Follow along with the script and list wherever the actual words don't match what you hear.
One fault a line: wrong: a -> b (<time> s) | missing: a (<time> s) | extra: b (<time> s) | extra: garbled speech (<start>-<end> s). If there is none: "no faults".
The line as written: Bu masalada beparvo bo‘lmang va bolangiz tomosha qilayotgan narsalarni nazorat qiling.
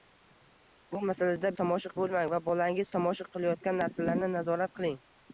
wrong: beparvo -> tomosha (1.6 s)